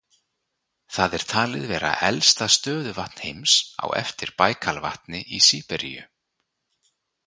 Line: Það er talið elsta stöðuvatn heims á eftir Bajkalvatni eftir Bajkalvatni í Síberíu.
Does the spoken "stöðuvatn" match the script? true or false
true